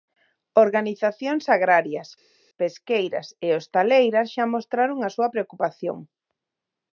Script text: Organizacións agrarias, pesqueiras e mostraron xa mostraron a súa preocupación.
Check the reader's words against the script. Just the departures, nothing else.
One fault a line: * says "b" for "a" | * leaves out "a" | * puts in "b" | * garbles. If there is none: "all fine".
* says "hostaleiras" for "mostraron"